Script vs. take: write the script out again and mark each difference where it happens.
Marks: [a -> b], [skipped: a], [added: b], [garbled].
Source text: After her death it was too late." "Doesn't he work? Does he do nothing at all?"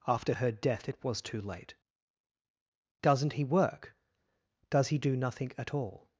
After her death it was too late." "Doesn't he work? Does he do nothing at all?"